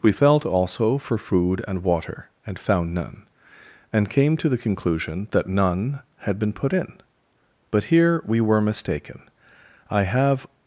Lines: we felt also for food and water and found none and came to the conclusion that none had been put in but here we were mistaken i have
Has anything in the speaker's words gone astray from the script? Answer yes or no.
no